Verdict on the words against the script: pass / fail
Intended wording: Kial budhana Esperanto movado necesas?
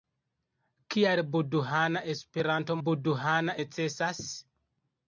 fail